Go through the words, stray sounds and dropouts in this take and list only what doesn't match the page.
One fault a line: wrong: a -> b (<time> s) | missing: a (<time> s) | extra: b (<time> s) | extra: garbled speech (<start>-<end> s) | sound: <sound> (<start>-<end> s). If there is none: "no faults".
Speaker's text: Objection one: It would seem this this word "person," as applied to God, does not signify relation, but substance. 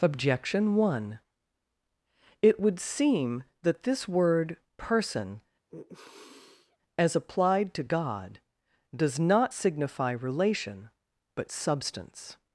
wrong: this -> that (3.6 s)
sound: sniff (5.7-6.8 s)